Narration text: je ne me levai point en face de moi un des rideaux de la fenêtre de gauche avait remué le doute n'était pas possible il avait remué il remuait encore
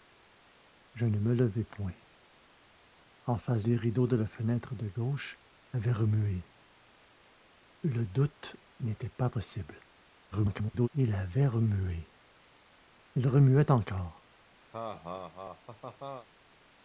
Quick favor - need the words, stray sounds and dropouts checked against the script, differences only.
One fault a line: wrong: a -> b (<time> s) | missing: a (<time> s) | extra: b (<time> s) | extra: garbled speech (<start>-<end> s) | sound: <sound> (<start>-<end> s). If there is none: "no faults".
missing: de moi un (3.7 s)
extra: garbled speech (10.3-10.9 s)
sound: laugh (14.7-16.3 s)